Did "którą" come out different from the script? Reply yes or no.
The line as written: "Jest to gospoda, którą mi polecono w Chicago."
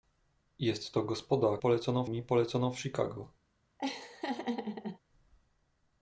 yes